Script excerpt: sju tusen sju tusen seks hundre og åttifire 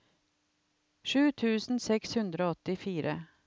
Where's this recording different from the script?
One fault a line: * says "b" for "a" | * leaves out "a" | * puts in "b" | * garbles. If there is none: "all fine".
* leaves out "sju tusen"